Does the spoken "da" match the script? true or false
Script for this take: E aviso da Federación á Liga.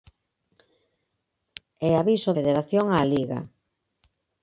false